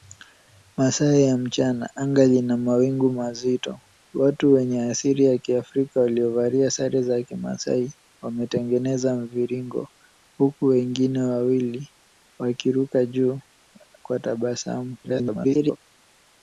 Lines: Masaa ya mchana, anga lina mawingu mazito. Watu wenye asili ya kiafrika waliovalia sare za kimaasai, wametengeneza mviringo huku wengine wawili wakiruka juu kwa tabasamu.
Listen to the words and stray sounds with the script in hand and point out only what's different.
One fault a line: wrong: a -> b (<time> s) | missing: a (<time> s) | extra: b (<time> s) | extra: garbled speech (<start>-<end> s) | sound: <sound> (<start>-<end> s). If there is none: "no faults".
extra: garbled speech (15.0-15.8 s)